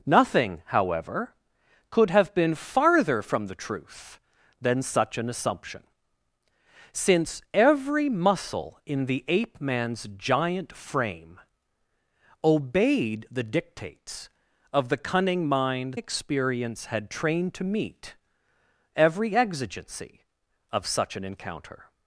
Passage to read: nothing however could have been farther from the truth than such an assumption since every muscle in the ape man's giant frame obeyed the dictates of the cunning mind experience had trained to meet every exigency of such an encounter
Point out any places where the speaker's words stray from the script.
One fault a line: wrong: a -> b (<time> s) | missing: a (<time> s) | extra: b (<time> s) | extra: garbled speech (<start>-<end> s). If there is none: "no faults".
no faults